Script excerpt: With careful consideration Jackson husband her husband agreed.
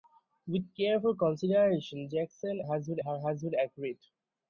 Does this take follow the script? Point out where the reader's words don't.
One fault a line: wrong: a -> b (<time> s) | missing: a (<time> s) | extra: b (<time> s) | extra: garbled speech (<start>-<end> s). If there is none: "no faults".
no faults